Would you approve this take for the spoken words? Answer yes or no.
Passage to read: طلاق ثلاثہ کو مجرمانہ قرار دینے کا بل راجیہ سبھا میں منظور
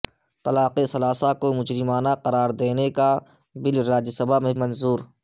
yes